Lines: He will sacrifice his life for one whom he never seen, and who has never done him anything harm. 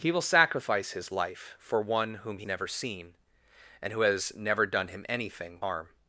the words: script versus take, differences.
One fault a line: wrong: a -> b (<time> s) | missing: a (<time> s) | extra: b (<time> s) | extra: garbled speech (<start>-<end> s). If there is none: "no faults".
no faults